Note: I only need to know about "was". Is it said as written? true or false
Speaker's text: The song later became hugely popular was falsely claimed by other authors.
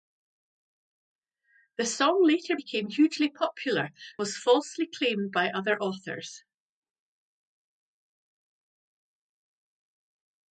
true